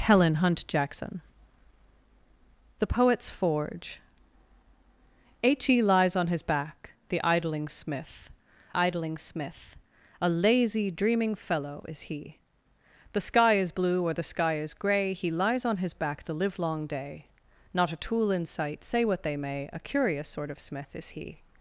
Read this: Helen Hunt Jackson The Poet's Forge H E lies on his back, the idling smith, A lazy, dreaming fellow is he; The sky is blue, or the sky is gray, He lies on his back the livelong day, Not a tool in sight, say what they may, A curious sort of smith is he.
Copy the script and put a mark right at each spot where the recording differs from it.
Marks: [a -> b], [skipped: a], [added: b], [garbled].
Helen Hunt Jackson The Poet's Forge H E lies on his back, the idling smith, [added: idling smith] A lazy, dreaming fellow is he; The sky is blue, or the sky is gray, He lies on his back the livelong day, Not a tool in sight, say what they may, A curious sort of smith is he.